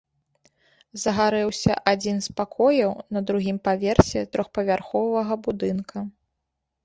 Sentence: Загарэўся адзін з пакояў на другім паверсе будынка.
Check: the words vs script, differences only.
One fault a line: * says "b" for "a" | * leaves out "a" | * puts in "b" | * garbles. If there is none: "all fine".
* puts in "трохпавярховага"